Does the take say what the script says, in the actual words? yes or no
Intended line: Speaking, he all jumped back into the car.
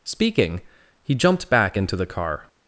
no